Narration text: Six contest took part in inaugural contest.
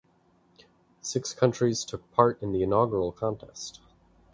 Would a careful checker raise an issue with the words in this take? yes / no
yes